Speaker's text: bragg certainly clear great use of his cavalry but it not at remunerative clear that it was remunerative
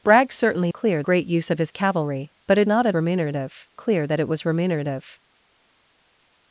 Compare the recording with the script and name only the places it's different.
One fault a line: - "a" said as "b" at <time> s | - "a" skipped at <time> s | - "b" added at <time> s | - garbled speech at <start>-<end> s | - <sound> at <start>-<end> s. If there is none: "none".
none